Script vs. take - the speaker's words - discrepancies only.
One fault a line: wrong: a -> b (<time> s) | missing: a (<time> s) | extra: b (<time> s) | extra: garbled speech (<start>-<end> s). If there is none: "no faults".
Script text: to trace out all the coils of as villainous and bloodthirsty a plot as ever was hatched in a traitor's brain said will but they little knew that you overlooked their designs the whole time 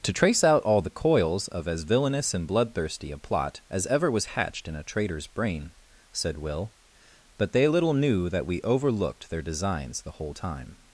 wrong: you -> we (8.5 s)